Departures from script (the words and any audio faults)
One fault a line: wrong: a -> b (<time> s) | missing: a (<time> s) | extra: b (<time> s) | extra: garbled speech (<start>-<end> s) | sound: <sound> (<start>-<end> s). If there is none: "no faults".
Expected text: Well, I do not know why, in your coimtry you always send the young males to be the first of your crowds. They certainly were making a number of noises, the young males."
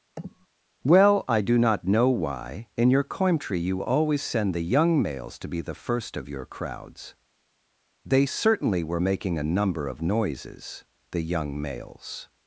sound: sniff (0.2-0.5 s)